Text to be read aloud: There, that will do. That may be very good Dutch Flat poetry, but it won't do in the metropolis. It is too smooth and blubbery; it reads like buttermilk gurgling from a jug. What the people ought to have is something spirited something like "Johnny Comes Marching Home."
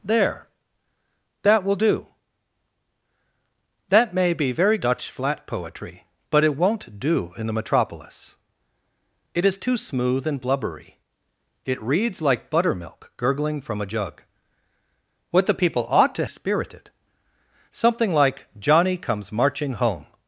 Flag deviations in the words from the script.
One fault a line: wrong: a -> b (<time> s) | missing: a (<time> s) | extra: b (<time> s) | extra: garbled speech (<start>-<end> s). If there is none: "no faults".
missing: good (4.8 s)
missing: have is something (16.2 s)